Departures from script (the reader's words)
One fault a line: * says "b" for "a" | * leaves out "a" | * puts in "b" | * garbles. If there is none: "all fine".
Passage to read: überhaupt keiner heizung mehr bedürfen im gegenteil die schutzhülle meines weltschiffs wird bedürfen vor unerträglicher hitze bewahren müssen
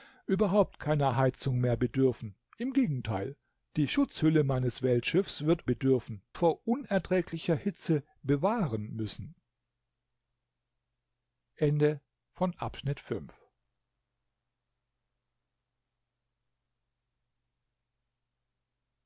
all fine